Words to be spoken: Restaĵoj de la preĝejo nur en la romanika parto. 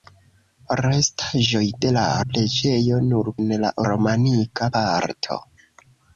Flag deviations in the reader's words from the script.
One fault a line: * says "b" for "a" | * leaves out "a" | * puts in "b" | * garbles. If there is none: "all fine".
all fine